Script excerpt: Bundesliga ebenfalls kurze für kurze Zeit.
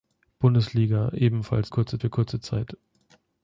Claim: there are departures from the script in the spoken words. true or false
false